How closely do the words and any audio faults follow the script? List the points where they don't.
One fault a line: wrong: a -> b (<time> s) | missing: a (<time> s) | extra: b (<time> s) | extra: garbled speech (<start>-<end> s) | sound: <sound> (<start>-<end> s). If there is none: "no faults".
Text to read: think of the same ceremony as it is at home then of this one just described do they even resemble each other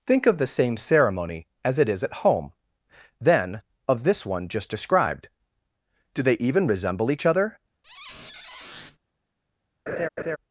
sound: squeak (7.8-9.0 s)
sound: laugh (9.9-10.4 s)